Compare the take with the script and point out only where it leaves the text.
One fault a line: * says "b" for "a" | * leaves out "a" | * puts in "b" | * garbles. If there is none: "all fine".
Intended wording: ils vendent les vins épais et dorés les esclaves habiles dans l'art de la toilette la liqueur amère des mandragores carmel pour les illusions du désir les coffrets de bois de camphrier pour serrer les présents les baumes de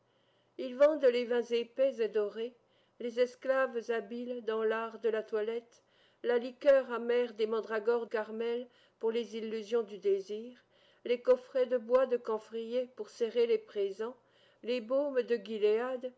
all fine